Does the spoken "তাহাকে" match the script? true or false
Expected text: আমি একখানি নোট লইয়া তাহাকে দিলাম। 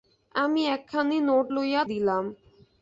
false